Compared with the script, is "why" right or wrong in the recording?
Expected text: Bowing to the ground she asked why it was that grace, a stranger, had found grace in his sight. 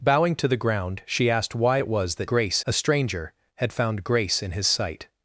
right